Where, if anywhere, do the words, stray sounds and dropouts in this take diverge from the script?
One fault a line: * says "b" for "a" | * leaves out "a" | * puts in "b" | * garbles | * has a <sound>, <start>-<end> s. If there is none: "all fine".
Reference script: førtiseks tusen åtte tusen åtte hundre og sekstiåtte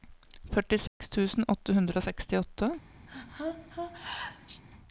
* has a dropout, 0.9-1.0 s
* leaves out "tusen åtte"
* has a sneeze, 3.1-4.6 s